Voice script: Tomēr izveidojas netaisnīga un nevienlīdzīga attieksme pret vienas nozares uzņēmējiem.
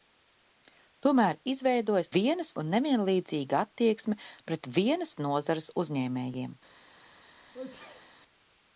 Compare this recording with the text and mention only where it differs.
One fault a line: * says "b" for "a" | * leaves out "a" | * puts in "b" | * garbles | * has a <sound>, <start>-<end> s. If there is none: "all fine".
* says "vienas" for "netaisnīga"
* has a sneeze, 7.5-8.2 s